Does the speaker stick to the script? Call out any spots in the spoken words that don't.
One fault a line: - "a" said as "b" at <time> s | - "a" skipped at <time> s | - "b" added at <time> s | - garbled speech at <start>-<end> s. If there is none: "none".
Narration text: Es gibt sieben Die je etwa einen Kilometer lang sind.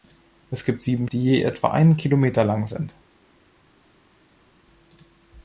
none